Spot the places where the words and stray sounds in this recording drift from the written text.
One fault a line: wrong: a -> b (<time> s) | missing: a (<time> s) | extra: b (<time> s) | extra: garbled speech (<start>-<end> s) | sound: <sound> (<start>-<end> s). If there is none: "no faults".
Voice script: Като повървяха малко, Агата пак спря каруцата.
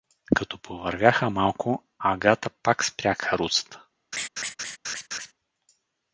sound: laugh (4.1-5.3 s)